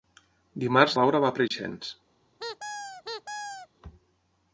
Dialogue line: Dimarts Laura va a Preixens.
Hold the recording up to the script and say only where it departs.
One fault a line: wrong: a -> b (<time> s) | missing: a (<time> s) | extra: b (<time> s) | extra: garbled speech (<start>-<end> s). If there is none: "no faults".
no faults